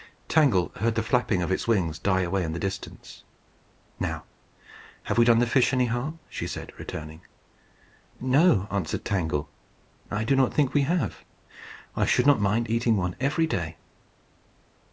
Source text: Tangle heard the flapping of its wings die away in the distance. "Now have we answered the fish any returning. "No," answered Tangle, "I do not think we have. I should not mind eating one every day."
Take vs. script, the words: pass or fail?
fail